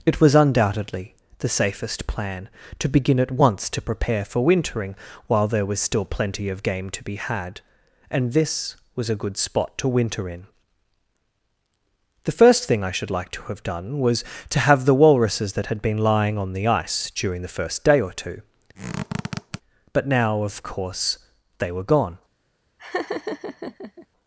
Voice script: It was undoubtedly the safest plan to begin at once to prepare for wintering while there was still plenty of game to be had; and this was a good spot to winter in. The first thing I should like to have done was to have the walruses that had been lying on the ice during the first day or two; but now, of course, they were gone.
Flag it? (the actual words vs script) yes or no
no